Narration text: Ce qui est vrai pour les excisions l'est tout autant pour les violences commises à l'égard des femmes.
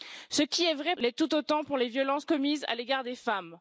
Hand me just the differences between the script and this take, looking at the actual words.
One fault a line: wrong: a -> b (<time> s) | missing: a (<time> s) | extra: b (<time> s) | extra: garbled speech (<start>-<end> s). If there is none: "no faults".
missing: pour les excisions (0.9 s)